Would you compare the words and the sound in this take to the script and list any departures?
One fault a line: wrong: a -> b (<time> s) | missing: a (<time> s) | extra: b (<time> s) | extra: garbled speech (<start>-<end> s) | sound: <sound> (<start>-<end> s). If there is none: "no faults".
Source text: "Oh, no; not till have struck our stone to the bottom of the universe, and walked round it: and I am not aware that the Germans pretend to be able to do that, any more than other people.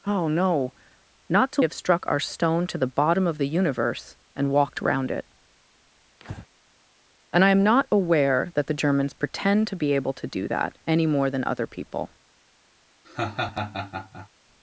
sound: breath (6.2-6.5 s)
sound: laugh (13.0-14.3 s)